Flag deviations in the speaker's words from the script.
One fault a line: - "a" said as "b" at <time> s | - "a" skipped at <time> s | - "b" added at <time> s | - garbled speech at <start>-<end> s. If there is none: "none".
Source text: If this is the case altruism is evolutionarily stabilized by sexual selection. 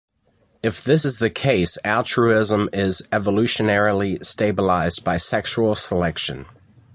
none